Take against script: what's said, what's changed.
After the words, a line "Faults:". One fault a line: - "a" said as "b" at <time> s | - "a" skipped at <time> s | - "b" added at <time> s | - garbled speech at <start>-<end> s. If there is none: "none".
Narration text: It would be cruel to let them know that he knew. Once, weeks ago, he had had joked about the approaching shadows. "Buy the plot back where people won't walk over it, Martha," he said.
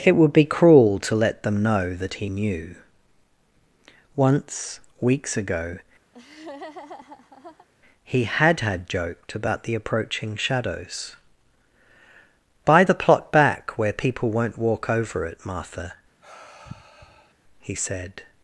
It would be cruel to let them know that he knew. Once, weeks ago, he had had joked about the approaching shadows. "Buy the plot back where people won't walk over it, Martha," he said.
Faults:
none